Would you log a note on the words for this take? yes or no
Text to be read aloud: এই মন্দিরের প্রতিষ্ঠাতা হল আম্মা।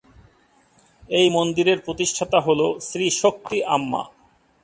yes